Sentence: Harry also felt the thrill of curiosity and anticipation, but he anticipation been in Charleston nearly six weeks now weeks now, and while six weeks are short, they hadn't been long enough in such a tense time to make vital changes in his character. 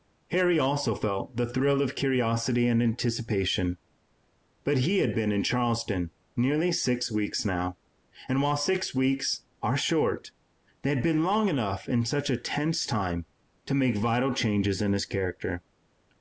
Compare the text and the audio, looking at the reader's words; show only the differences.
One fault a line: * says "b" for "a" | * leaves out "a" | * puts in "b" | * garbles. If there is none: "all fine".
* says "had" for "anticipation"
* leaves out "weeks now"
* says "had" for "hadn't"